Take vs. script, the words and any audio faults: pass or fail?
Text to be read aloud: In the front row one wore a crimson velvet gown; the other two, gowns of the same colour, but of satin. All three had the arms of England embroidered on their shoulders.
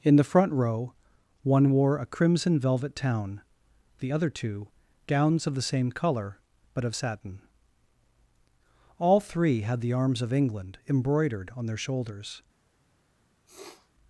fail